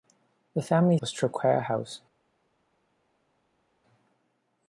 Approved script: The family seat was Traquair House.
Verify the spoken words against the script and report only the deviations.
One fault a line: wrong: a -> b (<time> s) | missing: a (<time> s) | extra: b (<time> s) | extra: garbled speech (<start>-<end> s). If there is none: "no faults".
missing: seat (1.0 s)